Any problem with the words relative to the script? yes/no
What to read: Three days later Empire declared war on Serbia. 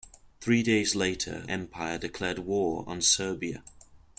no